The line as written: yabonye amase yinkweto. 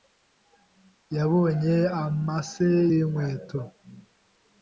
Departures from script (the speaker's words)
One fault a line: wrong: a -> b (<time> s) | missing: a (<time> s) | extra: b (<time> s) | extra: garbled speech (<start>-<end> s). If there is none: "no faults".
no faults